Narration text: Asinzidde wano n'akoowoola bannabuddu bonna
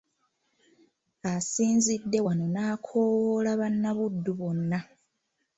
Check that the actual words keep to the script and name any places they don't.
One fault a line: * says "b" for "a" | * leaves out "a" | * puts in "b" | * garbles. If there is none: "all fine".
all fine